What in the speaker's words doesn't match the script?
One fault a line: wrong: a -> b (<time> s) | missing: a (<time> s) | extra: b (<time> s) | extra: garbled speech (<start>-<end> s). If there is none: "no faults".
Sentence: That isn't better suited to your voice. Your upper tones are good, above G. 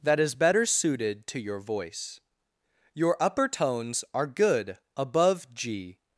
wrong: isn't -> is (0.2 s)